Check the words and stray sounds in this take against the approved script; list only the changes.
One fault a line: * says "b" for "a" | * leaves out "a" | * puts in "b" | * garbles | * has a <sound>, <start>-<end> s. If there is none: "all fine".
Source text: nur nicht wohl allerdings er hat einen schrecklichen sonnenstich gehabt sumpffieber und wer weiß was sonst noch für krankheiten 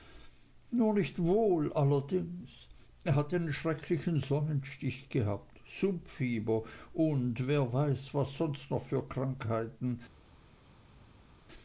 all fine